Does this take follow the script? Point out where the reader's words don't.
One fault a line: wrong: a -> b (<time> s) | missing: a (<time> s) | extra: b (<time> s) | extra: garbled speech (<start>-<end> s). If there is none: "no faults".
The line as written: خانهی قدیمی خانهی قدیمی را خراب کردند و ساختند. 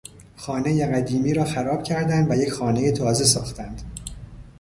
missing: خانهی قدیمی (1.3 s)
extra: یک خانهی تازه (2.3 s)